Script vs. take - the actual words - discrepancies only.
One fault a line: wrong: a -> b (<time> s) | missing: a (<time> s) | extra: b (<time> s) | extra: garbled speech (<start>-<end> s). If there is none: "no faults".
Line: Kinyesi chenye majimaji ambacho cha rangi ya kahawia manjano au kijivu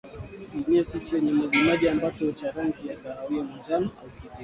no faults